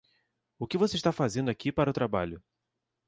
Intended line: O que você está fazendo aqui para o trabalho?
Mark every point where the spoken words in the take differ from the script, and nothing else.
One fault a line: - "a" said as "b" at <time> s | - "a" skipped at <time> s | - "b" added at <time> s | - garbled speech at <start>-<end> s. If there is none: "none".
none